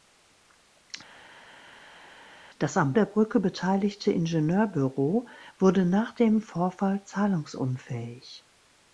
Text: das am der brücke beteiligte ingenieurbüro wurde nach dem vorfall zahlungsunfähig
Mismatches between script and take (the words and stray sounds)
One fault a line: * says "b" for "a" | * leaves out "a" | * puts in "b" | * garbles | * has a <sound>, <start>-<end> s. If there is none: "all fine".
all fine